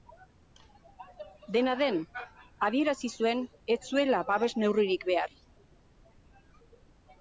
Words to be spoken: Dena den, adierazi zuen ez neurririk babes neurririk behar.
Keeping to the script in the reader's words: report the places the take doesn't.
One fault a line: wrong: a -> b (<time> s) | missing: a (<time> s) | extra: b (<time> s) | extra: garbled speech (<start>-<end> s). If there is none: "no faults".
wrong: neurririk -> zuela (3.9 s)